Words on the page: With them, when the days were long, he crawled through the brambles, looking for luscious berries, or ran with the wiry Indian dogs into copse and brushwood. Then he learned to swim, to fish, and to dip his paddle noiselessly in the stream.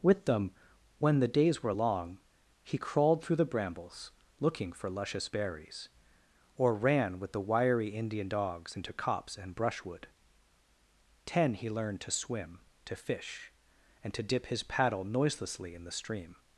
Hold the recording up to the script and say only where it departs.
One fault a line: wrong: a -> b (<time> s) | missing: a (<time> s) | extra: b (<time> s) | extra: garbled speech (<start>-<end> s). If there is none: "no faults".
wrong: Then -> Ten (11.3 s)